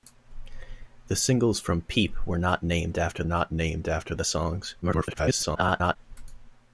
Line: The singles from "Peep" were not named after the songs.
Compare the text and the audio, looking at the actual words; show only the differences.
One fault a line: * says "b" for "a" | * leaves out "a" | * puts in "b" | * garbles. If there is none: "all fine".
* puts in "not named after"
* garbles